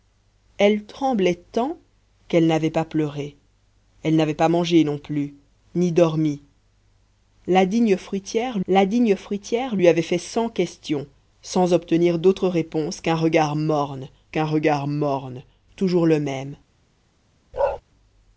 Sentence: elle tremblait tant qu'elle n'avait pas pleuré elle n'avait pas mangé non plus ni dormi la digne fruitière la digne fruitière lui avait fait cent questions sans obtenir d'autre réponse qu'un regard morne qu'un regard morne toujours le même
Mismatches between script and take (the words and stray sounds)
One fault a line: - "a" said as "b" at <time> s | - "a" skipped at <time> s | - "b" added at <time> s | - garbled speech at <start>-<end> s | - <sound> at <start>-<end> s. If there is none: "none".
- bark at 17.5-17.8 s